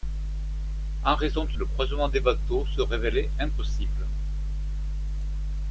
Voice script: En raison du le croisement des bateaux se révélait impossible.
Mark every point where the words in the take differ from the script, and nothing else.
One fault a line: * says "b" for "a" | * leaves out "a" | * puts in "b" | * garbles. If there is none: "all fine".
all fine